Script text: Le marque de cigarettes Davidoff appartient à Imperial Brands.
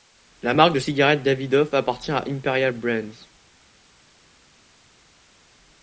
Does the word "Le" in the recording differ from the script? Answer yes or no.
yes